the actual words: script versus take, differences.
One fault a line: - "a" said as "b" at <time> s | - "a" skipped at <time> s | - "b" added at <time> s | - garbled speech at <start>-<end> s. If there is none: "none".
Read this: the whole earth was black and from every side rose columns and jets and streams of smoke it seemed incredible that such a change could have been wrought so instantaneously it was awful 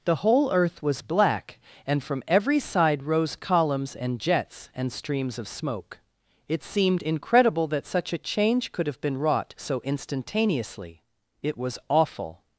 none